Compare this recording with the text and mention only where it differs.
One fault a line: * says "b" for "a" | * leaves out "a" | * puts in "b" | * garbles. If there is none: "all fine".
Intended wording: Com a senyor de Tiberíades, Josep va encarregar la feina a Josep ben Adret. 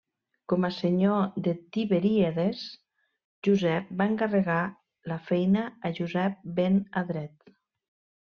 all fine